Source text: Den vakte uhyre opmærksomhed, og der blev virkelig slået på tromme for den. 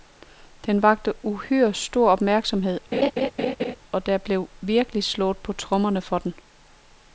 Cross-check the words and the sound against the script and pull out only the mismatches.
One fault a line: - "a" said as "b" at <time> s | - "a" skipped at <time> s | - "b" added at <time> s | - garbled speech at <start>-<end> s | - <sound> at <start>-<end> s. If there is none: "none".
- "stor" added at 1.7 s
- laugh at 2.9-3.8 s